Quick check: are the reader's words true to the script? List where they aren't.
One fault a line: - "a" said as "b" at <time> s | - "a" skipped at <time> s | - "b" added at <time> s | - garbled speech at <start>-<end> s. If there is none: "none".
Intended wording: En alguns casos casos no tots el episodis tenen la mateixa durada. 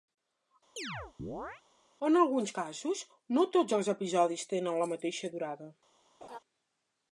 - "casos" skipped at 3.0 s
- "el" said as "els" at 3.8 s